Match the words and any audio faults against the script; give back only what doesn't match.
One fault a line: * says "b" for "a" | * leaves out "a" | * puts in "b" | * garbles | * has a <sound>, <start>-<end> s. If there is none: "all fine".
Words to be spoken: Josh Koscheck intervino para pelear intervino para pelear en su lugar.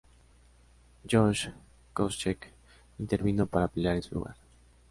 * leaves out "intervino para pelear"